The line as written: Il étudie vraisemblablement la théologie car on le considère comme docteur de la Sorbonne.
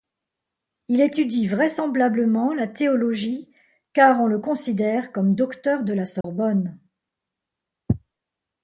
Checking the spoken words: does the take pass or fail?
pass